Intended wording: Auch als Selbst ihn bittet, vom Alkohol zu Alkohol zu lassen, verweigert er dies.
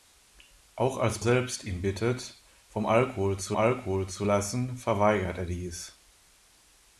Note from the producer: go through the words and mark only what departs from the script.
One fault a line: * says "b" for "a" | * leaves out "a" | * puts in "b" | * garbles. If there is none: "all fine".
all fine